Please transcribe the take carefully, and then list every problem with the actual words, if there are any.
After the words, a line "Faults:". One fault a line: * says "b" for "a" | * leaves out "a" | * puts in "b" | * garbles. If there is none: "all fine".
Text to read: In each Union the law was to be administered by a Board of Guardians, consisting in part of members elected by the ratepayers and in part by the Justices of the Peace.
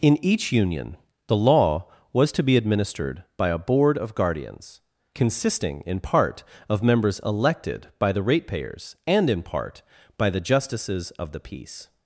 In each Union the law was to be administered by a Board of Guardians, consisting in part of members elected by the ratepayers and in part by the Justices of the Peace.
Faults:
all fine